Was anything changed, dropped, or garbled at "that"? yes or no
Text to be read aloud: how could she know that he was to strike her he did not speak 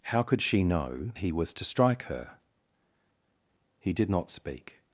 yes